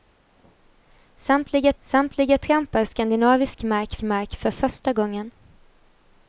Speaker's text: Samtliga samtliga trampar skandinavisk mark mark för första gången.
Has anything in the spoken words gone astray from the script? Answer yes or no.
no